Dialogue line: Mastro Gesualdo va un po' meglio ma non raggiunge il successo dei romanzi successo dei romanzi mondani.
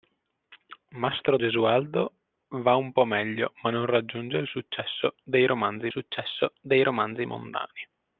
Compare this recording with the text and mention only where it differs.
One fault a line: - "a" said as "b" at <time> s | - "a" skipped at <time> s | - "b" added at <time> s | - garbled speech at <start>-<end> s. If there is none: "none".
none